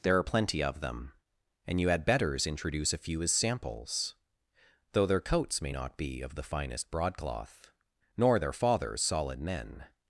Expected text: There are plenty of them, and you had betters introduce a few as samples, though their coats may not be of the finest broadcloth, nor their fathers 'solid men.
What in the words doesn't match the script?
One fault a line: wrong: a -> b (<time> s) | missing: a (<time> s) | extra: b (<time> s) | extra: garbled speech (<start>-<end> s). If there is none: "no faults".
no faults